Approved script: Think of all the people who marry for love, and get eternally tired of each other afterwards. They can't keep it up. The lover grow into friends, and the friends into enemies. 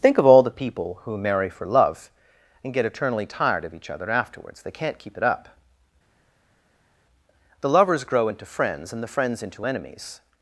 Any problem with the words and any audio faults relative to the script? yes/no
yes